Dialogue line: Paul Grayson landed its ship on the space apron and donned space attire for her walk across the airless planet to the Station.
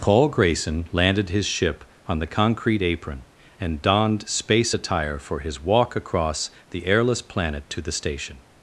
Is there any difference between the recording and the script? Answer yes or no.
yes